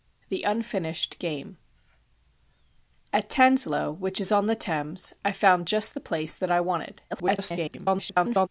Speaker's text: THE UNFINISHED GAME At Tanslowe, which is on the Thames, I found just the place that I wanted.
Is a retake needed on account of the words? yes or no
yes